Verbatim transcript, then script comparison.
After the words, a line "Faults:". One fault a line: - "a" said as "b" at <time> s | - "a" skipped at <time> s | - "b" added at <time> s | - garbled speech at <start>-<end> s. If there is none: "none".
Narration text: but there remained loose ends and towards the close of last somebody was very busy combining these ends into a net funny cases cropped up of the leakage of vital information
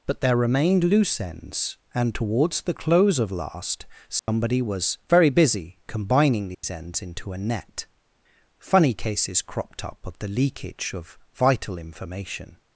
but there remained loose ends and towards the close of last somebody was very busy combining these ends into a net funny cases cropped up of the leakage of vital information
Faults:
none